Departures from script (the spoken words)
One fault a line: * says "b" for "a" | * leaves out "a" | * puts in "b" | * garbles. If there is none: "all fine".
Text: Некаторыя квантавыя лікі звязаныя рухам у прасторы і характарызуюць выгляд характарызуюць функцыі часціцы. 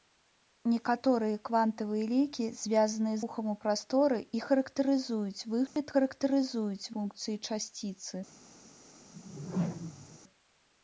all fine